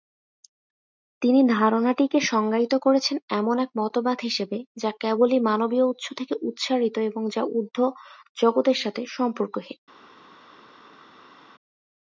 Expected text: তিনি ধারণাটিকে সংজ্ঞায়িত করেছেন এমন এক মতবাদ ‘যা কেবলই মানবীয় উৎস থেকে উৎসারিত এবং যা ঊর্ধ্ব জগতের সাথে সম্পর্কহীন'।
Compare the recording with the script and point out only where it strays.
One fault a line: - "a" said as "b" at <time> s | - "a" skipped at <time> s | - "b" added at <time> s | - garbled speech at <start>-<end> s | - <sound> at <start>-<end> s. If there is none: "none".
- "হিসেবে" added at 4.2 s